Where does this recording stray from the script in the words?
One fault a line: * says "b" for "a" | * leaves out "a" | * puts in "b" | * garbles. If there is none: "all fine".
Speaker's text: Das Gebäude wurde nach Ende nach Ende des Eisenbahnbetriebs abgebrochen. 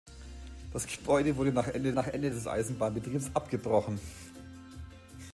all fine